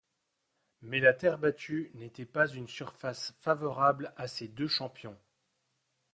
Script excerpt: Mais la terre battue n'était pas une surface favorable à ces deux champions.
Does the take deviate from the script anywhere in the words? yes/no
no